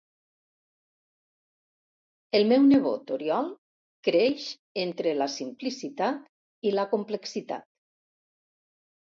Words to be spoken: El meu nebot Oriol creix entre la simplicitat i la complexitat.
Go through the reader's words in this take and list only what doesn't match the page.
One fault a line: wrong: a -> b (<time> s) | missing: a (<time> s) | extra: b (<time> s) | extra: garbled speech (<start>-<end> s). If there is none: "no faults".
no faults